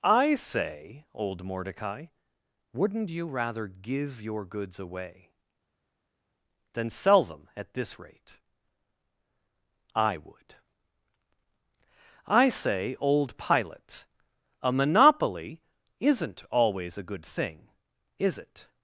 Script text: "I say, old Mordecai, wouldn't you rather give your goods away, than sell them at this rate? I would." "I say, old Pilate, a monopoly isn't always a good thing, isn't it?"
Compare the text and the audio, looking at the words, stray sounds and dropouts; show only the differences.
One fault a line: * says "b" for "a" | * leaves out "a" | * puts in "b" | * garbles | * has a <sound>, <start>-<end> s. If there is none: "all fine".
* says "is" for "isn't"